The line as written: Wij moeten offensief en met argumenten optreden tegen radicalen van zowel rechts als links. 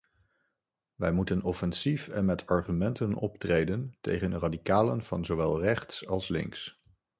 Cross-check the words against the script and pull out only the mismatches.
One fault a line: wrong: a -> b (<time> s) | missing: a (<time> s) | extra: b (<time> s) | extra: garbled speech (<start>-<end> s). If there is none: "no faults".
no faults